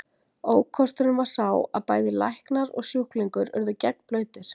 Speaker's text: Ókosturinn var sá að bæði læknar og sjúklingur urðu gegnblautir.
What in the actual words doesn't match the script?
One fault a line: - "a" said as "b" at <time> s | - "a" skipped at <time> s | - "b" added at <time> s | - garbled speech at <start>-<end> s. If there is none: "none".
none